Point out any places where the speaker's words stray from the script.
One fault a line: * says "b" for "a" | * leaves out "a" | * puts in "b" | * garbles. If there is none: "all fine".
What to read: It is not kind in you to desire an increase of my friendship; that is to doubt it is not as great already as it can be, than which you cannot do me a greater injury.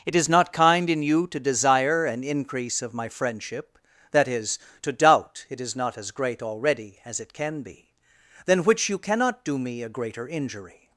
all fine